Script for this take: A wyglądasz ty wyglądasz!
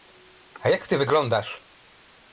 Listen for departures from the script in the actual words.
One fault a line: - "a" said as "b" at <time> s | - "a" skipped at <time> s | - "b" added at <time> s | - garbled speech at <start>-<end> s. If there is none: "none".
- "wyglądasz" said as "jak" at 0.7 s